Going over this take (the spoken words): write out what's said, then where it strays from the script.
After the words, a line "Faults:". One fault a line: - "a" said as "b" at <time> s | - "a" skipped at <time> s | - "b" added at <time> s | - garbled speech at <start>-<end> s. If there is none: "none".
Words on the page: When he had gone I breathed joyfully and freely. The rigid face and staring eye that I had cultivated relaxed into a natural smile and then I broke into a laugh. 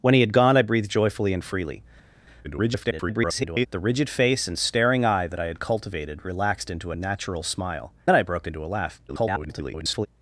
When he had gone I breathed joyfully and freely. [garbled] The rigid face and staring eye that I had cultivated relaxed into a natural smile then I broke into a laugh. [garbled]
Faults:
- garbled speech at 2.4-3.7 s
- "and" skipped at 7.9 s
- garbled speech at 9.1-10.1 s